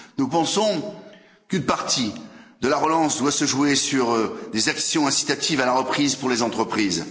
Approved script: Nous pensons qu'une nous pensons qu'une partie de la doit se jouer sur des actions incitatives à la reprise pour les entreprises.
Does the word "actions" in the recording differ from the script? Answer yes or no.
no